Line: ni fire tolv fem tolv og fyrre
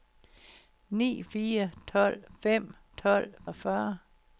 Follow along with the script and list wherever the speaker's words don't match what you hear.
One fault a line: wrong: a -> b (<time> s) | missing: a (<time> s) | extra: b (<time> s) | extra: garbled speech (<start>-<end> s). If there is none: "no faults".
no faults